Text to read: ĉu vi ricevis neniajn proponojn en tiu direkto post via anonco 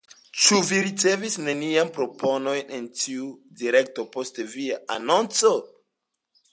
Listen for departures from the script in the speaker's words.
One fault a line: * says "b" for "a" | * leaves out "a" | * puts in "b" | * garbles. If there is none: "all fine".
all fine